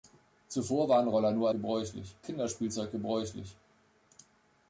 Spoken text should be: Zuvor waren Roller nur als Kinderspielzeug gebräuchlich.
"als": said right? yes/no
no